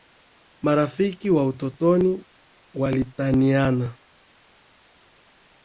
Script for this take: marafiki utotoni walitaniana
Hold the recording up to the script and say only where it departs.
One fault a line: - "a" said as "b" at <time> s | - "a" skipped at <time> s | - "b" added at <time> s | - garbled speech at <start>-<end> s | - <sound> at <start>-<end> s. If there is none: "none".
- "wa" added at 1.3 s